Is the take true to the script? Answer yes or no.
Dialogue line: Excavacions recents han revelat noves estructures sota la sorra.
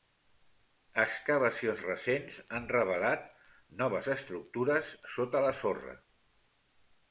yes